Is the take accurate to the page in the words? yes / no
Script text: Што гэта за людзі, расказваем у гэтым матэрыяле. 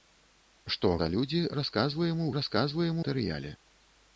no